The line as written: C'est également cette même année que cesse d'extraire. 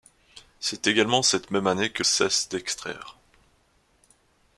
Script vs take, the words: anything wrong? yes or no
no